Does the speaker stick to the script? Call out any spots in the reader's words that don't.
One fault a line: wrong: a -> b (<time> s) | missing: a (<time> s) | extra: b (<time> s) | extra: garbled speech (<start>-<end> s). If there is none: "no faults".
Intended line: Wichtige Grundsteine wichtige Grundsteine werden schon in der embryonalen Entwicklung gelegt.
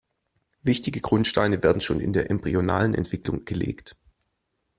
missing: wichtige Grundsteine (1.6 s)